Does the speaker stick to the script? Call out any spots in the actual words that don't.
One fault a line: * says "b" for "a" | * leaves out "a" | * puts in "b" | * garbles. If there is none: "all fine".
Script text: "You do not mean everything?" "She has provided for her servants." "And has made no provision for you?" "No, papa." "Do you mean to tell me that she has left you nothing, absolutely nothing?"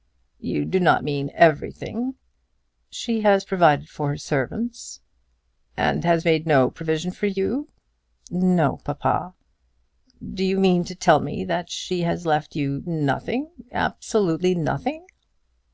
all fine